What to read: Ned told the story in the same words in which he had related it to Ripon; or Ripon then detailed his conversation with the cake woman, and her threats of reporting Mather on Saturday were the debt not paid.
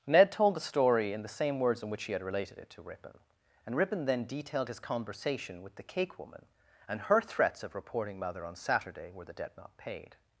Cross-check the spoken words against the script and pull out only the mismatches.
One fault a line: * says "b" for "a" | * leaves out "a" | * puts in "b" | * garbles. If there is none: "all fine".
* says "and" for "or"